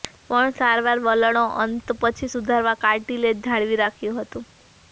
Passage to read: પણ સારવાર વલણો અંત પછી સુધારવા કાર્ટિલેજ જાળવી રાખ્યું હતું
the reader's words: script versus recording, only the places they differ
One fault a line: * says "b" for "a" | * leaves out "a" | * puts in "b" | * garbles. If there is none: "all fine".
all fine